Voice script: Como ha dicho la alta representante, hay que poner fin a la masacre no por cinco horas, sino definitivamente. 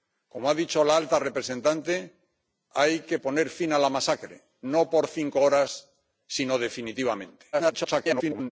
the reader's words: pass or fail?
fail